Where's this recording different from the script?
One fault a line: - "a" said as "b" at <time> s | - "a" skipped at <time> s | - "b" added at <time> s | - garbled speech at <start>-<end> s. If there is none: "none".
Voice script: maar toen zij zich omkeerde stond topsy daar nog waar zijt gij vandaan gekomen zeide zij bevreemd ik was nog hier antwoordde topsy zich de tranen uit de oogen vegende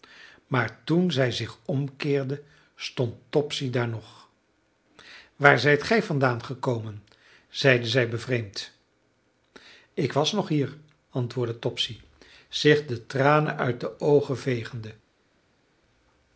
none